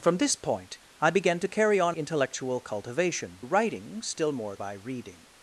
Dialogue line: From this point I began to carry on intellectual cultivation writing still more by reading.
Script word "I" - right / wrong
right